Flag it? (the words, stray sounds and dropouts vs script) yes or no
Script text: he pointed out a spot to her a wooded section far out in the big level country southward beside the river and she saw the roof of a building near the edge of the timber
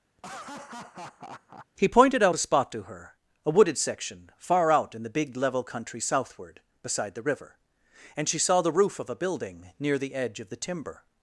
yes